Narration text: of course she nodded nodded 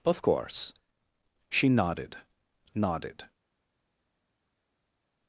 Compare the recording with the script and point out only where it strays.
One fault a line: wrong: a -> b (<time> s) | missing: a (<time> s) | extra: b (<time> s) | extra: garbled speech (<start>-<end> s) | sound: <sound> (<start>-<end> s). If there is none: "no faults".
no faults